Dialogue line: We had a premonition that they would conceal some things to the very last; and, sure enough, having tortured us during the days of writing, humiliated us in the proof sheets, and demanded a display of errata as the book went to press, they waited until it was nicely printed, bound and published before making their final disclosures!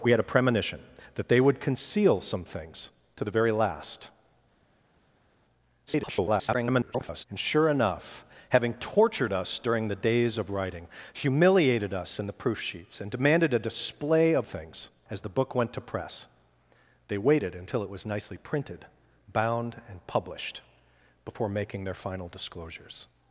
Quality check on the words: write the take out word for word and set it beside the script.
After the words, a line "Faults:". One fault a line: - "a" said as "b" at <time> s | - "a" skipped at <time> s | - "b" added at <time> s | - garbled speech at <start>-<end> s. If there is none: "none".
We had a premonition that they would conceal some things to the very last; [garbled] and, sure enough, having tortured us during the days of writing, humiliated us in the proof sheets, and demanded a display of things as the book went to press, they waited until it was nicely printed, bound and published before making their final disclosures!
Faults:
- garbled speech at 5.9-7.2 s
- "errata" said as "things" at 14.4 s